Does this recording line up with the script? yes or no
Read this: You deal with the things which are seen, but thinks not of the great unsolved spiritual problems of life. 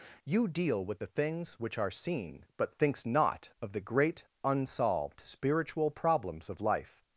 yes